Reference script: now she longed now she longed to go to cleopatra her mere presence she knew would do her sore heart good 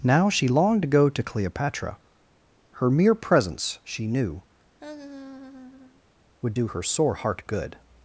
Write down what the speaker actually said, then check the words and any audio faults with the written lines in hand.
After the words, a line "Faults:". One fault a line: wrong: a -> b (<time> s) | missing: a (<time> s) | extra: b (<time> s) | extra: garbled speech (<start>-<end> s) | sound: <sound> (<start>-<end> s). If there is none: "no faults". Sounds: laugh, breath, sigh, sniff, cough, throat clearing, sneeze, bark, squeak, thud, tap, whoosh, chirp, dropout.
now she longed to go to cleopatra her mere presence she knew would do her sore heart good
Faults:
missing: now she longed (0.8 s)
sound: laugh (4.8-6.0 s)